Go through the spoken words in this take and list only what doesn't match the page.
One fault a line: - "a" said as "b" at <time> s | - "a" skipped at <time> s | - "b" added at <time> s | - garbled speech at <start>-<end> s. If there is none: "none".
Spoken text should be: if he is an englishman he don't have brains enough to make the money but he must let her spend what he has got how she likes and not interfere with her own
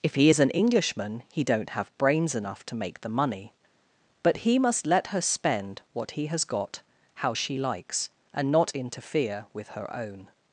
none